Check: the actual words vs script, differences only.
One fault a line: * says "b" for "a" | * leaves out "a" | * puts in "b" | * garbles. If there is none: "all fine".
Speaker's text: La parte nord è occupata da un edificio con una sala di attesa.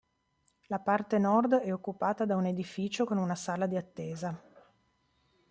all fine